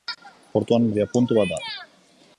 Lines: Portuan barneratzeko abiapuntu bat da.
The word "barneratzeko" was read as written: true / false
false